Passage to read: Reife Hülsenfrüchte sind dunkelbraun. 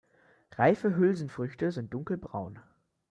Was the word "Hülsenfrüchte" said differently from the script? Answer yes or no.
no